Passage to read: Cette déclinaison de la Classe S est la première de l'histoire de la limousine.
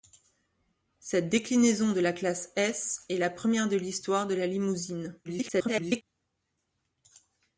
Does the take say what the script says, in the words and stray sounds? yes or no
no